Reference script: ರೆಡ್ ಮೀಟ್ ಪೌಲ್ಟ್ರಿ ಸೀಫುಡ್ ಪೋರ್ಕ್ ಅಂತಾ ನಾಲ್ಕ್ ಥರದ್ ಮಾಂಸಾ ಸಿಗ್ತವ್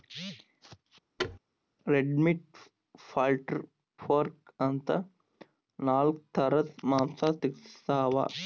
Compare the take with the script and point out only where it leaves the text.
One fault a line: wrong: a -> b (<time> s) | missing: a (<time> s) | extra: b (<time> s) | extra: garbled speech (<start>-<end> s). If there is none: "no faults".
missing: ಸೀಫುಡ್ (3.6 s)